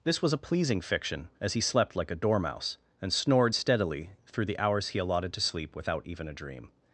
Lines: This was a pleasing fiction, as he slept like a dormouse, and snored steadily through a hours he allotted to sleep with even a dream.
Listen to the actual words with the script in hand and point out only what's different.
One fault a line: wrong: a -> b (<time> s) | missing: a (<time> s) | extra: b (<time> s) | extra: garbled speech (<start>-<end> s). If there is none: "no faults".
wrong: a -> the (4.5 s)
wrong: with -> without (5.8 s)